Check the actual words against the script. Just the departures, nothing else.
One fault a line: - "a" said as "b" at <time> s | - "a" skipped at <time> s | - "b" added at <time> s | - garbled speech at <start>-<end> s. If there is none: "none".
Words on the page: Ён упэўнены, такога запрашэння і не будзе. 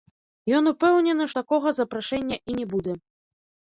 none